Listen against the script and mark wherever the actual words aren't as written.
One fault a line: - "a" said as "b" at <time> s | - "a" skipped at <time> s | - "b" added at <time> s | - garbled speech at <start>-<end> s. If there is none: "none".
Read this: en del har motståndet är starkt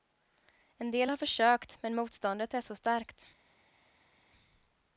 - "försökt men" added at 1.2 s
- "så" added at 2.6 s